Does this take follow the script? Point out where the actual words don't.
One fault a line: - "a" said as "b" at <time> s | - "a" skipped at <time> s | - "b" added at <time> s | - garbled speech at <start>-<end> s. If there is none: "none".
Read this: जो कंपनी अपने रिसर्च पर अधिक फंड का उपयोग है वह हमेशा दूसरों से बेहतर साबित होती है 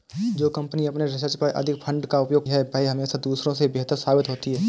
none